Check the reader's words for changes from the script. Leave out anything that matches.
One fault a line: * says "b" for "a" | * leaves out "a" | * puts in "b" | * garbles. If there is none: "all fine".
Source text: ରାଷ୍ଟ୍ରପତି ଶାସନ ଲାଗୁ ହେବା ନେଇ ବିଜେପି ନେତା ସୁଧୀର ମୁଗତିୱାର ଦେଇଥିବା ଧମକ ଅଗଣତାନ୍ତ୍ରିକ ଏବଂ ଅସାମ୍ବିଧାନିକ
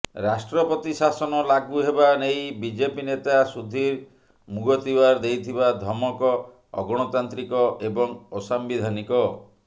all fine